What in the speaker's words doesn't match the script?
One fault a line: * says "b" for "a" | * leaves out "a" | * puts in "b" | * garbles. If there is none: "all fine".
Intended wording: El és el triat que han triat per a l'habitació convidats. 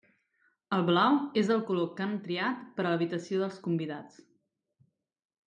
* puts in "blau"
* says "color" for "triat"
* puts in "dels"